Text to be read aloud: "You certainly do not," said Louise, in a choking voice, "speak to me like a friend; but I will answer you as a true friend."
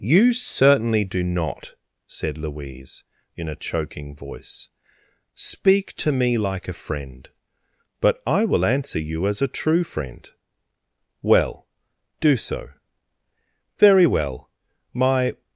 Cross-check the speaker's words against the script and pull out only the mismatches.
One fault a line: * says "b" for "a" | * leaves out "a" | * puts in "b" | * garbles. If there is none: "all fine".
* puts in "Well do so Very well my"